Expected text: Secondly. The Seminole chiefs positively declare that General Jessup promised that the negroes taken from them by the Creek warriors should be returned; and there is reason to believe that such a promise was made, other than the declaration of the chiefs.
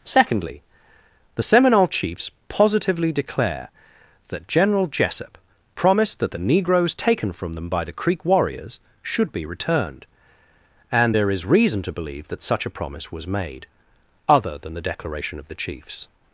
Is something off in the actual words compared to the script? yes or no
no